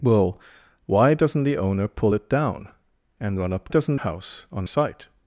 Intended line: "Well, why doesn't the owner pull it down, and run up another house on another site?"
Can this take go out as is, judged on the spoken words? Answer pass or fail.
fail